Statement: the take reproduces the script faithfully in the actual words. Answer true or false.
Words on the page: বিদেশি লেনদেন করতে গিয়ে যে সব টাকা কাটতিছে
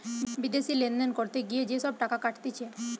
true